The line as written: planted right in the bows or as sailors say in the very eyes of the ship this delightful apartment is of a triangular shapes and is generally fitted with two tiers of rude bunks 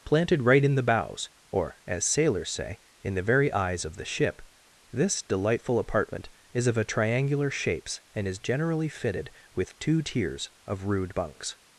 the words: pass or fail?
pass